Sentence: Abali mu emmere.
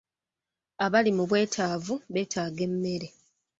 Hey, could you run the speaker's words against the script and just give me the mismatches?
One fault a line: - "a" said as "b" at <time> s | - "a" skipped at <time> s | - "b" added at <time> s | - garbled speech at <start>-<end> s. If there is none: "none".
- "bwetaavu beetaaga" added at 1.3 s